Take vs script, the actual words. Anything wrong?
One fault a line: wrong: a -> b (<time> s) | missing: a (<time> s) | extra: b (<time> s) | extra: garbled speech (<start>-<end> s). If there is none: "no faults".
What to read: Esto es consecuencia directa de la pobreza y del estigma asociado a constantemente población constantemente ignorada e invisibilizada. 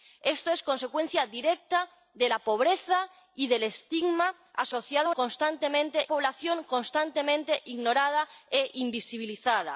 no faults